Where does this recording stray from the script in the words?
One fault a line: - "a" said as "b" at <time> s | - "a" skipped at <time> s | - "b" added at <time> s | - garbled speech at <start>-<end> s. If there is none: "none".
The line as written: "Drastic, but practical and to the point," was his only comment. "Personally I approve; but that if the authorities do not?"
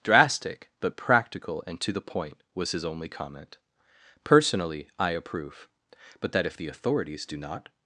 none